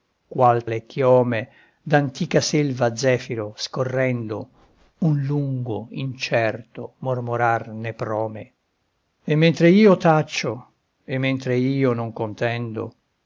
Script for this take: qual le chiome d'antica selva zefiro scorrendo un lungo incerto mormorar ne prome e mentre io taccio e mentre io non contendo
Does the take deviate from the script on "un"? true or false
false